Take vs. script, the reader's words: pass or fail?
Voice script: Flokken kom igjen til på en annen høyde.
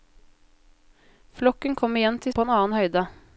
pass